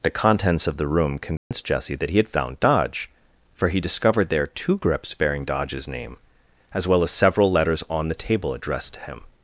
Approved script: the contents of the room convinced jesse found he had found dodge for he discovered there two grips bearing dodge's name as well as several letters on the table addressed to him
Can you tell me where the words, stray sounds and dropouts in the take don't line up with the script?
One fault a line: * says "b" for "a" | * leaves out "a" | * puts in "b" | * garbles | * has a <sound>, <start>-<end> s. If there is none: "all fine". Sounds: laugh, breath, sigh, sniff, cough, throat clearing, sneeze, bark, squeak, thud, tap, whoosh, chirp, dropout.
* has a dropout, 1.4-1.5 s
* says "that" for "found"